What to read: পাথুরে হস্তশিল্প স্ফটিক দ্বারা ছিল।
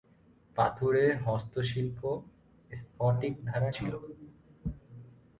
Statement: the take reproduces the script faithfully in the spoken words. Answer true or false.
true